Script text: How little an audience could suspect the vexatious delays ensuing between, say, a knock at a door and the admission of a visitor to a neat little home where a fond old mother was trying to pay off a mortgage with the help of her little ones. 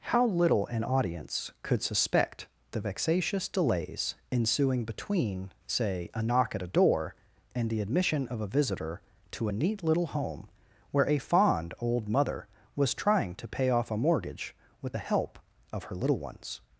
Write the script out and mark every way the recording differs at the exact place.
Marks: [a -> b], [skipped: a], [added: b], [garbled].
How little an audience could suspect the vexatious delays ensuing between, say, a knock at a door and the admission of a visitor to a neat little home where a fond old mother was trying to pay off a mortgage with the help of her little ones.